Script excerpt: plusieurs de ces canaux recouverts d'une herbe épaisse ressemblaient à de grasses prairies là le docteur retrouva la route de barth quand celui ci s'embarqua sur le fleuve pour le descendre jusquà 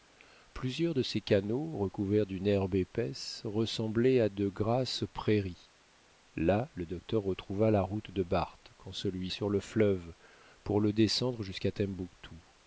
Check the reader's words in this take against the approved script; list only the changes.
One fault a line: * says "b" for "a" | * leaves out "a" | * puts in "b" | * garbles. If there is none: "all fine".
* leaves out "ci s'embarqua"